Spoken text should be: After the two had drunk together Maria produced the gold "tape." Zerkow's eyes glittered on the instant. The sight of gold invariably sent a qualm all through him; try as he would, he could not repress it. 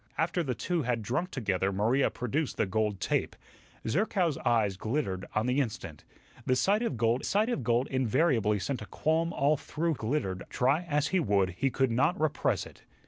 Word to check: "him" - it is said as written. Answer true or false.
false